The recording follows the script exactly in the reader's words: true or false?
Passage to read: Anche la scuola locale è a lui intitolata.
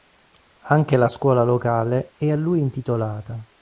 true